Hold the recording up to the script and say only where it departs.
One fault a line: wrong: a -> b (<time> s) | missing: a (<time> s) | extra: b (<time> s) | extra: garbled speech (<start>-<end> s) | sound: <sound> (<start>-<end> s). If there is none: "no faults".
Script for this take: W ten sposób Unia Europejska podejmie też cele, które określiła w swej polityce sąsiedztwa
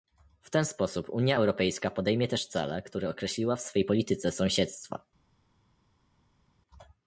no faults